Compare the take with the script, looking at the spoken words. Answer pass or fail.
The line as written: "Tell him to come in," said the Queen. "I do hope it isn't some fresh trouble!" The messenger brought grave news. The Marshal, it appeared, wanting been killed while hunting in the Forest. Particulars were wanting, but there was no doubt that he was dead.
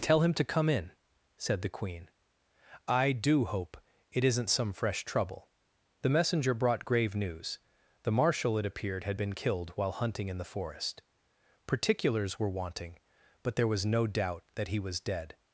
fail